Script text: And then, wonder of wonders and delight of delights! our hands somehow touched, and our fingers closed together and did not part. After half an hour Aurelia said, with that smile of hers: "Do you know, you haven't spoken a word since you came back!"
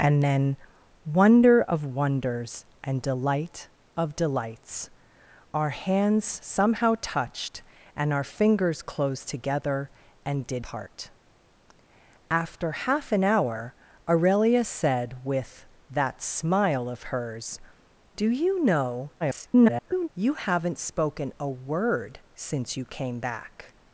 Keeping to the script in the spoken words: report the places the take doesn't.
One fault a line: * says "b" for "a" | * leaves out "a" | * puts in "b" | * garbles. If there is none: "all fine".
* leaves out "not"
* garbles